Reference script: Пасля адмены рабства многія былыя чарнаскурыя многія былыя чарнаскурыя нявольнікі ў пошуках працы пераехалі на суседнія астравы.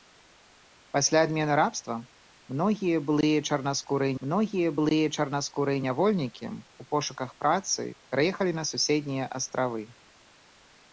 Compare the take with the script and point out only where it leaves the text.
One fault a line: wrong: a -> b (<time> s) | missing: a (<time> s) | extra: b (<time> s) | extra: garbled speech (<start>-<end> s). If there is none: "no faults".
no faults